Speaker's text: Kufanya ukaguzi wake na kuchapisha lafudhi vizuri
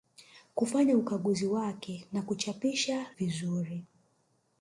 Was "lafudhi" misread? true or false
true